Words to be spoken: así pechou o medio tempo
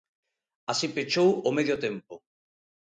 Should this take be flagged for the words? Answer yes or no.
no